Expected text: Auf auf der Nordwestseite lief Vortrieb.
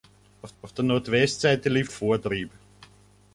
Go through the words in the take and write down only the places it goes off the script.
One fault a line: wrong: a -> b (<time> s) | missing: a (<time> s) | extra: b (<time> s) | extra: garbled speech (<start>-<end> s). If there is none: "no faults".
no faults